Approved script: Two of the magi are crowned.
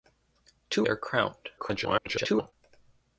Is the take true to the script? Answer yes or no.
no